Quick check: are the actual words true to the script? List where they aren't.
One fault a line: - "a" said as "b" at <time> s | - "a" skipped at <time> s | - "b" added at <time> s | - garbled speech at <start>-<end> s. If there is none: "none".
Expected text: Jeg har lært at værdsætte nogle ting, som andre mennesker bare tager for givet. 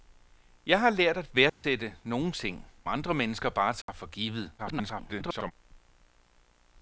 - "som" skipped at 2.7 s
- garbled speech at 4.6-5.5 s